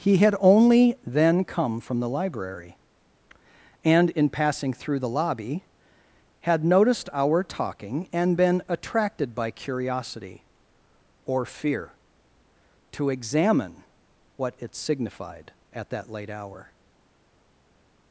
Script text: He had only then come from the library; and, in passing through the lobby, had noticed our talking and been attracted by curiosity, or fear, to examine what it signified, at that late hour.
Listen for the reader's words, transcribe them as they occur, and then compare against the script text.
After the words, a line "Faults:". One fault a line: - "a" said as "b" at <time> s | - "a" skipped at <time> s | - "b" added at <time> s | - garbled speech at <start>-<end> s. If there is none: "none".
He had only then come from the library; and, in passing through the lobby, had noticed our talking and been attracted by curiosity, or fear, to examine what it signified, at that late hour.
Faults:
none